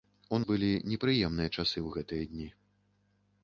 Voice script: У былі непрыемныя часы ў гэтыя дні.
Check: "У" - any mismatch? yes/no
no